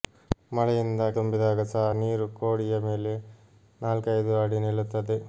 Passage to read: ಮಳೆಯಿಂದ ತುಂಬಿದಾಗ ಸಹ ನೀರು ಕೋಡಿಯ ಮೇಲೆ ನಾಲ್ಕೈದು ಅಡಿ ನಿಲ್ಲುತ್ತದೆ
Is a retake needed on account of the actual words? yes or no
no